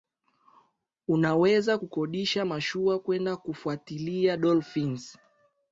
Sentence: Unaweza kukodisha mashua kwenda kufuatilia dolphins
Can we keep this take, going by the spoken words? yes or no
yes